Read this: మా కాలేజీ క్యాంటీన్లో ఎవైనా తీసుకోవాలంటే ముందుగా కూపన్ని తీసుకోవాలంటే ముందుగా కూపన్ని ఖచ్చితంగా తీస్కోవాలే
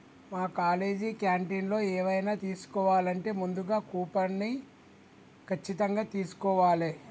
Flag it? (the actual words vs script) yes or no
yes